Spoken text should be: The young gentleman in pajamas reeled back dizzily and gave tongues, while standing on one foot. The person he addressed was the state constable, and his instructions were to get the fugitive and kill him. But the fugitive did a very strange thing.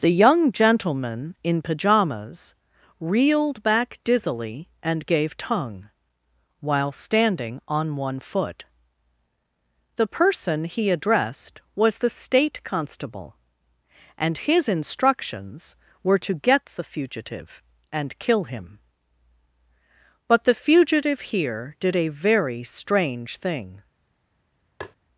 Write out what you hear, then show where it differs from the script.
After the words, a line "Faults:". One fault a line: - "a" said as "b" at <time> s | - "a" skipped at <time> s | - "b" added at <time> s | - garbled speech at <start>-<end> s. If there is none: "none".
The young gentleman in pajamas reeled back dizzily and gave tongue, while standing on one foot. The person he addressed was the state constable, and his instructions were to get the fugitive and kill him. But the fugitive here did a very strange thing.
Faults:
- "tongues" said as "tongue" at 5.4 s
- "here" added at 21.2 s